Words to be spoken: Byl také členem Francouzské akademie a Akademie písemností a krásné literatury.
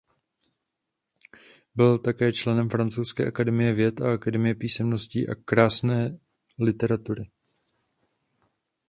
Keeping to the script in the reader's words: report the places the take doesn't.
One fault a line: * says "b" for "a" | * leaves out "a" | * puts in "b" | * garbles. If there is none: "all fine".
* puts in "věd"